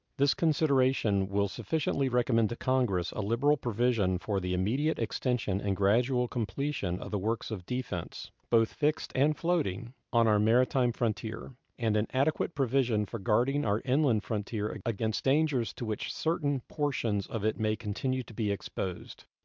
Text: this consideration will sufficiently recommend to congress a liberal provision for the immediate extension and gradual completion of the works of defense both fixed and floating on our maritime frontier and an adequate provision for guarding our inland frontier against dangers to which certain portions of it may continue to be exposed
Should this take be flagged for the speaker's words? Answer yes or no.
no